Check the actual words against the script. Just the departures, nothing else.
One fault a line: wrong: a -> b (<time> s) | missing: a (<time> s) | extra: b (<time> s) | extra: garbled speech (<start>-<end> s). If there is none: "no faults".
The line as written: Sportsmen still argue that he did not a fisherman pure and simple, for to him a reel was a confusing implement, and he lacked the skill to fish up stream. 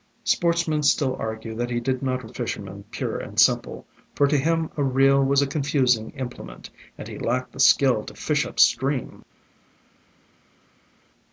no faults